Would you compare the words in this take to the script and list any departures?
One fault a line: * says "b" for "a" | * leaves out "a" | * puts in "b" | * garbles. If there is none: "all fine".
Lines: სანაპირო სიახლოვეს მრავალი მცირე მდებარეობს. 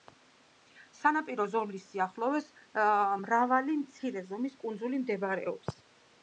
* puts in "ზოლის"
* puts in "ზომის კუნძული"